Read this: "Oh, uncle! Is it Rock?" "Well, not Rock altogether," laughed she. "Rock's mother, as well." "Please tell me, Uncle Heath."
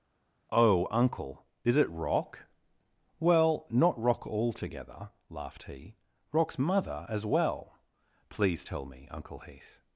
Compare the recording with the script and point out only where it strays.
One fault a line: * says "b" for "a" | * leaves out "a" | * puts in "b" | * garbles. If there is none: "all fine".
* says "he" for "she"